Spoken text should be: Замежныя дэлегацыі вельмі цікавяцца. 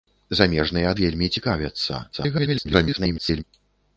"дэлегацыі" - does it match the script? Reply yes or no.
no